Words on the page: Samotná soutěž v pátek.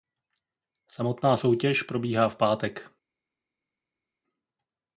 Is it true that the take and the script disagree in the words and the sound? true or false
true